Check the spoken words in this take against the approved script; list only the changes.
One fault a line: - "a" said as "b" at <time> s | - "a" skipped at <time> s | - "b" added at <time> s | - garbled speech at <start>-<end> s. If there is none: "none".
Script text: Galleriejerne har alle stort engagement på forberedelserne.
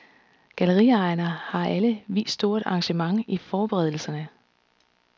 - "vist" added at 2.1 s
- "på" said as "i" at 3.3 s